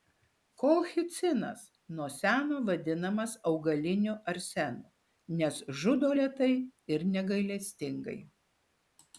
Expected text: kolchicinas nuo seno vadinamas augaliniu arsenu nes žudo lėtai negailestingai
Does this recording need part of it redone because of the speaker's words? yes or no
yes